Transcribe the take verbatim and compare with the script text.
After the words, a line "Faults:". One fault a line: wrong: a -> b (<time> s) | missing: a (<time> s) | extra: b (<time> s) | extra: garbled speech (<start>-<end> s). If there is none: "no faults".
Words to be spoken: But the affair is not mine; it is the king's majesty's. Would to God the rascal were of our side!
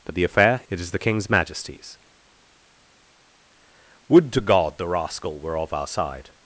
But the affair; it is the king's majesty's. Would to God the rascal were of our side!
Faults:
missing: is not mine (0.6 s)